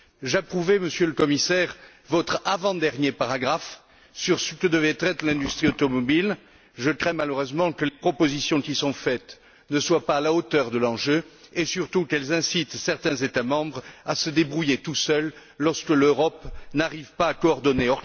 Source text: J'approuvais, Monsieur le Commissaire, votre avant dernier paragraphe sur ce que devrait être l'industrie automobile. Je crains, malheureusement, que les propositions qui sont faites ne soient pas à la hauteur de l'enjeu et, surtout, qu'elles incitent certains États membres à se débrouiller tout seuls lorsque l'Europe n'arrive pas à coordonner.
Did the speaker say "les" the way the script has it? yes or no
no